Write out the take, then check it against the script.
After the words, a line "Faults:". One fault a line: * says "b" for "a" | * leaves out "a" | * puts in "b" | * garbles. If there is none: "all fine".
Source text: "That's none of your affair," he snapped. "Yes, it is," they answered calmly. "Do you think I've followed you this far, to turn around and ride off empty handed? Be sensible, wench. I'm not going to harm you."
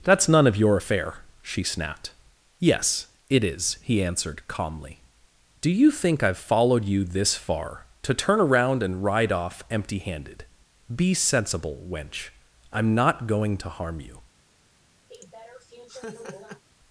"That's none of your affair," she snapped. "Yes, it is," he answered calmly. "Do you think I've followed you this far, to turn around and ride off empty handed? Be sensible, wench. I'm not going to harm you."
Faults:
* says "she" for "he"
* says "he" for "they"